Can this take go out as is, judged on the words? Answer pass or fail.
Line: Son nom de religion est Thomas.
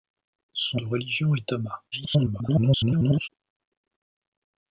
fail